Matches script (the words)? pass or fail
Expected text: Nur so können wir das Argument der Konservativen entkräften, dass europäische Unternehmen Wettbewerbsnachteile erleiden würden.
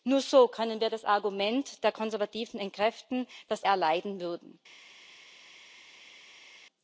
fail